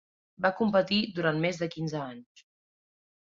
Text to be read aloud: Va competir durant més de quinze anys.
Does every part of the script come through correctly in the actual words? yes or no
yes